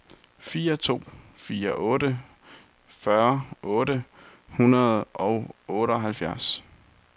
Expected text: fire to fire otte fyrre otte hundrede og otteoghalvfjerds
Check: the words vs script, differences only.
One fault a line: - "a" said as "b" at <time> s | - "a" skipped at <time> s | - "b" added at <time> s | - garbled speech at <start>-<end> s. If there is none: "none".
none